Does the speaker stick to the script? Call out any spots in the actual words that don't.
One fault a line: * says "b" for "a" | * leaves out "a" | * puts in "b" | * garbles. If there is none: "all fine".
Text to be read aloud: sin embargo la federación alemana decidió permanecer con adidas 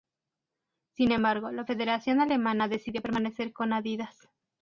all fine